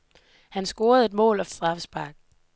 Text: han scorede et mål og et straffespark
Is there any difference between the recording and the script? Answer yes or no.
no